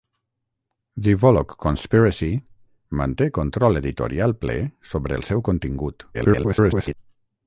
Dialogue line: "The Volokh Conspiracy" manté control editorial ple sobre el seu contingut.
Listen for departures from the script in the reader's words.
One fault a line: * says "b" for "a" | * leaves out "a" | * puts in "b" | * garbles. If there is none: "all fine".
* garbles